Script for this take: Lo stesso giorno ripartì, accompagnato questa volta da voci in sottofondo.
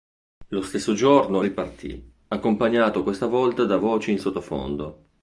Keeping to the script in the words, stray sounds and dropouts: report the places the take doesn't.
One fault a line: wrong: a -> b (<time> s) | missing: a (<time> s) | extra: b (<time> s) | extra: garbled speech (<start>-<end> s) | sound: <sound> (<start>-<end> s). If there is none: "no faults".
no faults